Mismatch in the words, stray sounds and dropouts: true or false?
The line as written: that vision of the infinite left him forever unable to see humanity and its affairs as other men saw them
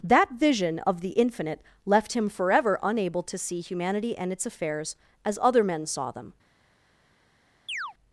true